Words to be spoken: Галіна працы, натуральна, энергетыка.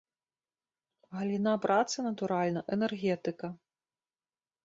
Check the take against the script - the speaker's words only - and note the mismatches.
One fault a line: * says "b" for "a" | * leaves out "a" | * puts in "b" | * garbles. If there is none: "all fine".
all fine